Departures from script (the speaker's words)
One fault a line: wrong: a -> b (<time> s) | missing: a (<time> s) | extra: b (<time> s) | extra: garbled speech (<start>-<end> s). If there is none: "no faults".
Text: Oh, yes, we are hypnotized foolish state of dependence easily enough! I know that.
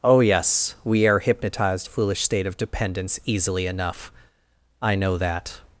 no faults